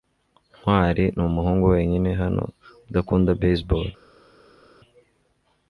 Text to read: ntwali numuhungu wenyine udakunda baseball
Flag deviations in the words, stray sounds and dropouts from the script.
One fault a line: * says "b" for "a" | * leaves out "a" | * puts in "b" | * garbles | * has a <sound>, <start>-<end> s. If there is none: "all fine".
* puts in "hano"